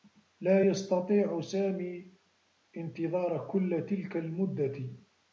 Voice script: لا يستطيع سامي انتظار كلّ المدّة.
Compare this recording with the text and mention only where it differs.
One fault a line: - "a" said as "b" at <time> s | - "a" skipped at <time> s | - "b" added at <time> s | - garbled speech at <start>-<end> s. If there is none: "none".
- "تلك" added at 3.9 s